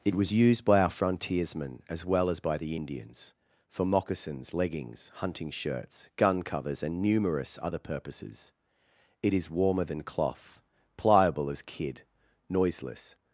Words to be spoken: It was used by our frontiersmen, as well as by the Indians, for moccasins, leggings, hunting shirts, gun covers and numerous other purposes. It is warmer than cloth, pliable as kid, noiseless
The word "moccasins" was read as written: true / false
true